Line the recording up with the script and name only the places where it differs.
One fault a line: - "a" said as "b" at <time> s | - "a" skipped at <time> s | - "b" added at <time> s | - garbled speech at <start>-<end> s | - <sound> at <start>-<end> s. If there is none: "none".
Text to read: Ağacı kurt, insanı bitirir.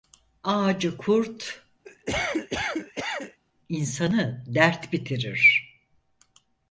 - cough at 1.8-3.4 s
- "dert" added at 4.5 s